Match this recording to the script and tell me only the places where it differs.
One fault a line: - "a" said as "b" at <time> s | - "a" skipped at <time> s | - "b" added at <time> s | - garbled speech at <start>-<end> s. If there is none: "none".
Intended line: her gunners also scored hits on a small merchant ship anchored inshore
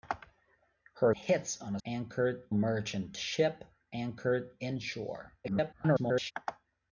- "gunners also scored" skipped at 1.1 s
- "small" said as "anchored" at 1.9 s
- garbled speech at 5.4-6.3 s